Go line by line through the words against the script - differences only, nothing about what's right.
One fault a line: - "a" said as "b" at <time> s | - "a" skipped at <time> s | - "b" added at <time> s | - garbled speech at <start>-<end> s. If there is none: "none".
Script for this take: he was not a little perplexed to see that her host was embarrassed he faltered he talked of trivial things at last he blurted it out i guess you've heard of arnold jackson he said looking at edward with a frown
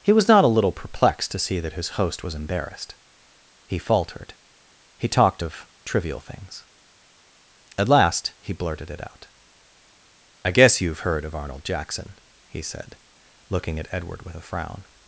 - "her" said as "his" at 1.7 s